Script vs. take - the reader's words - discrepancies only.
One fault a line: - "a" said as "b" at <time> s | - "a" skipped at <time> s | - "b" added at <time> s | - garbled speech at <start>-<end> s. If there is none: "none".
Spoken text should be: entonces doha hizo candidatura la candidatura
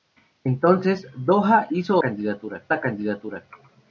none